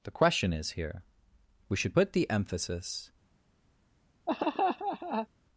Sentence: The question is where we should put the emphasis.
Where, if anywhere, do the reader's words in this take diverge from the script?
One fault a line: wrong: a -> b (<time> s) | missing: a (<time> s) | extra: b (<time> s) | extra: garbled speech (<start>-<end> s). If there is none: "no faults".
wrong: where -> here (0.7 s)